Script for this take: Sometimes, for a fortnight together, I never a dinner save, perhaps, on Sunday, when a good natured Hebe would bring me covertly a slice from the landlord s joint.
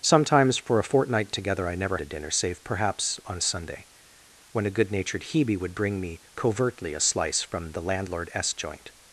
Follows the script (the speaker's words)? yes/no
yes